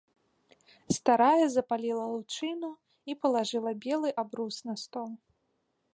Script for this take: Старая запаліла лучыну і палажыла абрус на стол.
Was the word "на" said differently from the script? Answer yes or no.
no